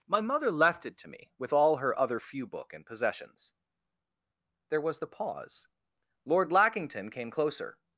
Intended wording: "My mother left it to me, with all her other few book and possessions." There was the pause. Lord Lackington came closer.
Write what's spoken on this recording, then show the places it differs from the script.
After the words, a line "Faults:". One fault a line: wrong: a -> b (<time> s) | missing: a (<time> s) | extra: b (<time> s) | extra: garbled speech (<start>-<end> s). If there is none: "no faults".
"My mother left it to me, with all her other few book and possessions." There was the pause. Lord Lackington came closer.
Faults:
no faults